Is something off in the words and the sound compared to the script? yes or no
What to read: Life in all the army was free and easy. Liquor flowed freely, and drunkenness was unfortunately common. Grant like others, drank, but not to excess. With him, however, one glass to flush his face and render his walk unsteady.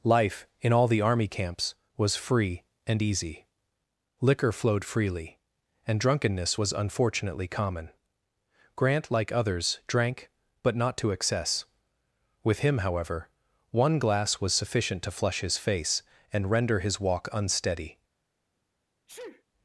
yes